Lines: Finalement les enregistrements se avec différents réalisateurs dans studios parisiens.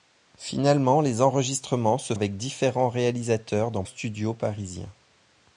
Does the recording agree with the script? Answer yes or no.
yes